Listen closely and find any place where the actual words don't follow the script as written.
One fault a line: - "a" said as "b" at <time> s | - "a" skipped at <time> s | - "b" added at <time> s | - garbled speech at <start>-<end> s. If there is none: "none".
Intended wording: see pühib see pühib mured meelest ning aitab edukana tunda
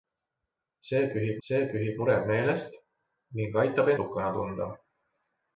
none